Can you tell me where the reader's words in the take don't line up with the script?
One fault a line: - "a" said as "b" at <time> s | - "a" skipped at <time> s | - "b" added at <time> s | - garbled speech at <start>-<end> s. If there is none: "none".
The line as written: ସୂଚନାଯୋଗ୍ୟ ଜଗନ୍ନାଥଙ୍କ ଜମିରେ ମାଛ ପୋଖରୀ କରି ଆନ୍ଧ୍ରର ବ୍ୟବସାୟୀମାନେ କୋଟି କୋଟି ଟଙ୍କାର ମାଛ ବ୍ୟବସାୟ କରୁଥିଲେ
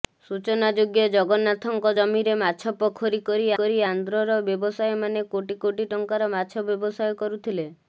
- "କରି" added at 3.6 s